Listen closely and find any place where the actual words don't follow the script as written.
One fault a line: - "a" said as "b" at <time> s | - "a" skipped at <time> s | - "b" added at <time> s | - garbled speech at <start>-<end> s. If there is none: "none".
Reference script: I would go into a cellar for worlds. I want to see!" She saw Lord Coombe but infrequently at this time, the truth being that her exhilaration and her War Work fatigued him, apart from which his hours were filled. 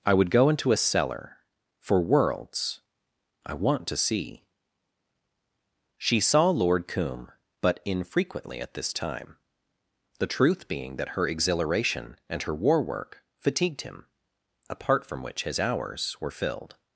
none